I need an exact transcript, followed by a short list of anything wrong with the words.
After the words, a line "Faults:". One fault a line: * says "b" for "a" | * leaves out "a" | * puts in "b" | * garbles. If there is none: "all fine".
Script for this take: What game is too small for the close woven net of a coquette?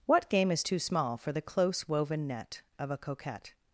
What game is too small for the close woven net of a coquette?
Faults:
all fine